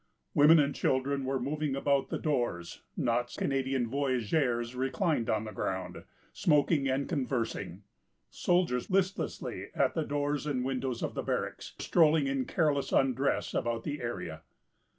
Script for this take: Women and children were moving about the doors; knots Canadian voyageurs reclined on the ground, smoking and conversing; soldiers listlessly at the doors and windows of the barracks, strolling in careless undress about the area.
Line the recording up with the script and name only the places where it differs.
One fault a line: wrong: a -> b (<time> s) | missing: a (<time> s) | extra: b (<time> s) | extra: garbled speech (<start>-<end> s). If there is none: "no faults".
no faults